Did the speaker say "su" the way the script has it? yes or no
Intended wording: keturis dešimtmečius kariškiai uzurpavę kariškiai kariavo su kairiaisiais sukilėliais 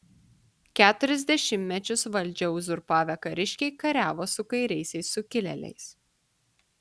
yes